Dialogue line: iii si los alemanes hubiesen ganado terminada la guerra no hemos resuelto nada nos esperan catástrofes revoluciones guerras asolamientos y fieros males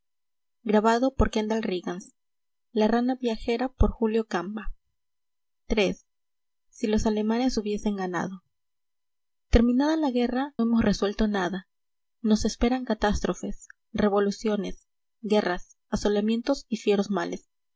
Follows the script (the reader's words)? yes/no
no